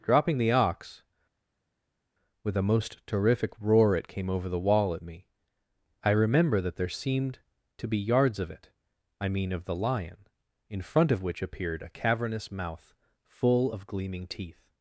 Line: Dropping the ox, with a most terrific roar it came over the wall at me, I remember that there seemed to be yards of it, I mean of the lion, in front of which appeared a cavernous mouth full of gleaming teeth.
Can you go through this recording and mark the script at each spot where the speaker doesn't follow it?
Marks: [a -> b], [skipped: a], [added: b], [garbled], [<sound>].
Dropping the ox, with a most terrific roar it came over the wall at me, I remember that there seemed to be yards of it, I mean of the lion, in front of which appeared a cavernous mouth full of gleaming teeth.